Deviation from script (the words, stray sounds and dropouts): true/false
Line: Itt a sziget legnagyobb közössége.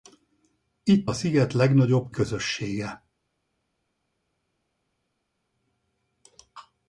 false